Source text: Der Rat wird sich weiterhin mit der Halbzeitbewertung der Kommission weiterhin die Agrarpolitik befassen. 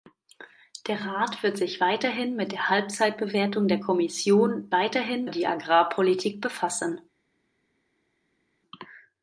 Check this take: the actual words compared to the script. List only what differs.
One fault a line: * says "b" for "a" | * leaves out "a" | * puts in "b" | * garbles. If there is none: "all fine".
all fine